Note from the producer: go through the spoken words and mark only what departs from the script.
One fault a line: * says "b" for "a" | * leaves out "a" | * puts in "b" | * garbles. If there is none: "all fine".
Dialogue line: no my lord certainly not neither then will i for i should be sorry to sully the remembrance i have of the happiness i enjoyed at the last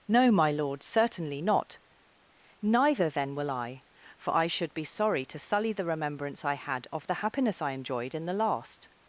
* says "had" for "have"
* says "in" for "at"